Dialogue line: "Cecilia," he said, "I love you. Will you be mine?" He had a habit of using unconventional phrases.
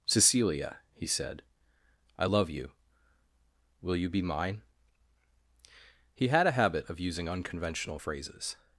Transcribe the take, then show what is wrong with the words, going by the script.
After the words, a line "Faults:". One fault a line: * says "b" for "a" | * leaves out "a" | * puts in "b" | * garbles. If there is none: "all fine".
"Cecilia," he said, "I love you. Will you be mine?" He had a habit of using unconventional phrases.
Faults:
all fine